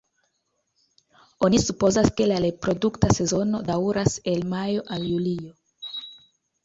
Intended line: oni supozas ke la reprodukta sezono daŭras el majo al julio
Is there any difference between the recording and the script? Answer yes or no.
no